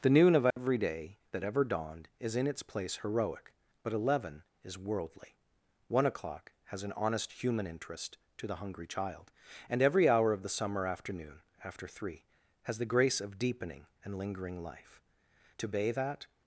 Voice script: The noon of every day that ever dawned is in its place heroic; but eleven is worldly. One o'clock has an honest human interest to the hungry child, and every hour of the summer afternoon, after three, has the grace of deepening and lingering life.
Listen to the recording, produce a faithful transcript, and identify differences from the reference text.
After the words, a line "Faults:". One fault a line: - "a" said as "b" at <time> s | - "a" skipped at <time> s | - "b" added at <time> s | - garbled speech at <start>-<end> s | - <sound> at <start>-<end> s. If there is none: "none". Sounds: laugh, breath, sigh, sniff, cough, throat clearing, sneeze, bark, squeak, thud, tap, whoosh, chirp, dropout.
The noon of every day that ever dawned is in its place heroic; but eleven is worldly. One o'clock has an honest human interest to the hungry child, and every hour of the summer afternoon, after three, has the grace of deepening and lingering life. To bathe at
Faults:
- dropout at 0.5-0.6 s
- "To bathe at" added at 15.6 s